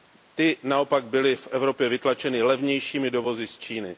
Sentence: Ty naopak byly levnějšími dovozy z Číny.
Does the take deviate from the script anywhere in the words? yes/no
yes